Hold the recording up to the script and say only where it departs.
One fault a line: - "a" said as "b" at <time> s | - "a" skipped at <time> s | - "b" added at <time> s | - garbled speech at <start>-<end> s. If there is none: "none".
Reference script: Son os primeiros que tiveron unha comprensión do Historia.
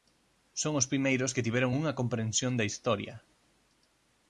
- "do" said as "da" at 2.5 s